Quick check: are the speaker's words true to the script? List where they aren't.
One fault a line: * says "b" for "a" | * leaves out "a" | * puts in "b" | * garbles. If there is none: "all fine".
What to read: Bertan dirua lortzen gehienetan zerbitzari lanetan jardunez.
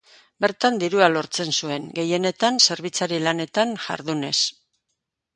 * puts in "zuen"